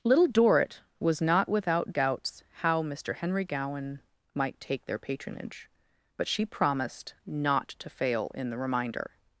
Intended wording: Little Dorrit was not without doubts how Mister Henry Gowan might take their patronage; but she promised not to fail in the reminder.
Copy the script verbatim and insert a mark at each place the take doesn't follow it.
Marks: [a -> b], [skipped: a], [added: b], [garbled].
Little Dorrit was not without doubts how Mister Henry Gowan might take their patronage; but she promised not to fail in the reminder.